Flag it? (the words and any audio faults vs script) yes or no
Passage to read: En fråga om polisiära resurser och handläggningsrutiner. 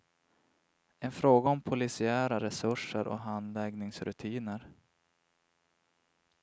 no